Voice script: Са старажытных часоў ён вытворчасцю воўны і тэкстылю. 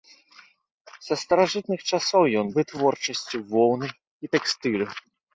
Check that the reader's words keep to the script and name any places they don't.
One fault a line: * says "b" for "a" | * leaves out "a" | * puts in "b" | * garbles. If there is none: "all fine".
all fine